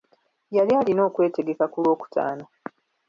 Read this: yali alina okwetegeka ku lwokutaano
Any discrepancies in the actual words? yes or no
no